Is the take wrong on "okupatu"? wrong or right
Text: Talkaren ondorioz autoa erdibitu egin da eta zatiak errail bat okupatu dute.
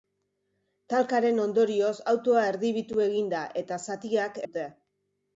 wrong